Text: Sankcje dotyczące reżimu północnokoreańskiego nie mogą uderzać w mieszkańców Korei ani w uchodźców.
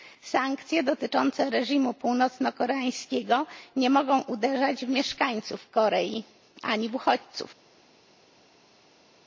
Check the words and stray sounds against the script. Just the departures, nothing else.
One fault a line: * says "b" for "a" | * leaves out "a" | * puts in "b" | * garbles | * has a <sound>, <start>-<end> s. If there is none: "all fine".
all fine